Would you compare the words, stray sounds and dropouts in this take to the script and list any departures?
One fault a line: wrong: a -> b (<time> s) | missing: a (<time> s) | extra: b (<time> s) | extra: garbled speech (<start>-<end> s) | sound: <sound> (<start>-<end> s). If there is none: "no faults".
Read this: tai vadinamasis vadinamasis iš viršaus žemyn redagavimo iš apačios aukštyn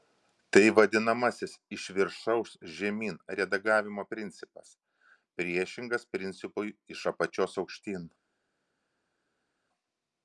missing: vadinamasis (1.5 s)
extra: principas priešingas principui (4.1 s)